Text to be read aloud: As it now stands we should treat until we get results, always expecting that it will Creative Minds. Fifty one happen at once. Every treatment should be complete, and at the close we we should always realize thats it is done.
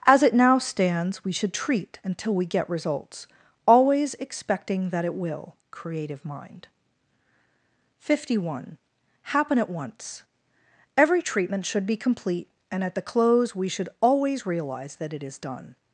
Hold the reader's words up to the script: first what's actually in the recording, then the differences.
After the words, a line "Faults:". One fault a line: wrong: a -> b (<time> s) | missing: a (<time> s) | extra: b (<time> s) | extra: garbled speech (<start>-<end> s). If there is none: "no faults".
As it now stands we should treat until we get results, always expecting that it will Creative Mind. Fifty one happen at once. Every treatment should be complete, and at the close we should always realize that it is done.
Faults:
wrong: Minds -> Mind (6.2 s)
missing: we (13.7 s)
wrong: thats -> that (15.0 s)